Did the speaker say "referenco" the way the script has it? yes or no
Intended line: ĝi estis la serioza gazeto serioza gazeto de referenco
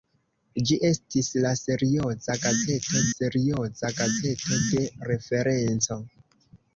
yes